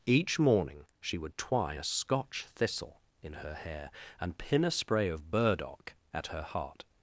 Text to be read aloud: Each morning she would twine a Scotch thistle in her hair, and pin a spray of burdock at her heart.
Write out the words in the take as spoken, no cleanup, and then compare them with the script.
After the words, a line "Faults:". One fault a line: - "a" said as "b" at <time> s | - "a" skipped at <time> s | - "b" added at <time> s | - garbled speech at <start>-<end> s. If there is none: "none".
Each morning she would twine a Scotch thistle in her hair, and pin a spray of burdock at her heart.
Faults:
none